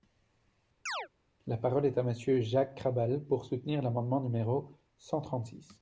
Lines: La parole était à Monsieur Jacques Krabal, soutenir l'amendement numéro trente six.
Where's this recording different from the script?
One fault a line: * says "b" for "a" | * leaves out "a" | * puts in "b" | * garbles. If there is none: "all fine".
* says "est" for "était"
* puts in "pour"
* puts in "cent"